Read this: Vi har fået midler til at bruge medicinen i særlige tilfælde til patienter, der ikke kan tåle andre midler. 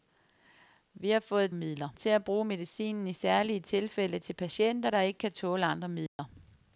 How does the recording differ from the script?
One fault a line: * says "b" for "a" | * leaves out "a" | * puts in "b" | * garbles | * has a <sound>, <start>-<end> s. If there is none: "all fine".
* has a dropout, 6.1-6.2 s